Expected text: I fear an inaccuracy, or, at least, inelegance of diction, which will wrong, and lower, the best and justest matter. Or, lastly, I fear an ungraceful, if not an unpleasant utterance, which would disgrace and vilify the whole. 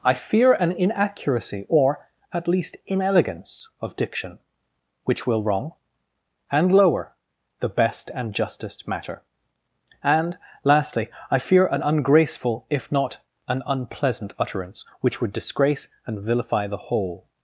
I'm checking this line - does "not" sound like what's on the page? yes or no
yes